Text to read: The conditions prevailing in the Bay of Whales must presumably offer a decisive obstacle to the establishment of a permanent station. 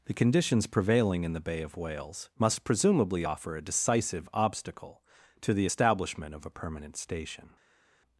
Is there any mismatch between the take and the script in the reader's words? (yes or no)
no